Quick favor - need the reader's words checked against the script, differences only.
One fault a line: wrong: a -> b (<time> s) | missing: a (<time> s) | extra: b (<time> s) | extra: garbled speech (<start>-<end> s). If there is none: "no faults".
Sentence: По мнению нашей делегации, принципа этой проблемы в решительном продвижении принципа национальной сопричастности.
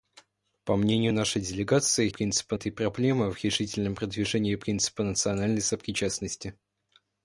no faults